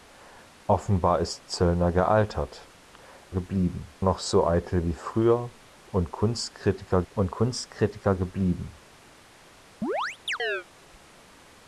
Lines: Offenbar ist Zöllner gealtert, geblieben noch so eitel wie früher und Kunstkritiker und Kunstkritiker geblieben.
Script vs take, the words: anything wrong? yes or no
no